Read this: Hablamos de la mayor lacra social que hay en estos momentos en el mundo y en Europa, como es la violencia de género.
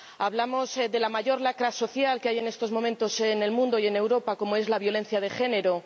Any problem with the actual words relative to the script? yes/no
no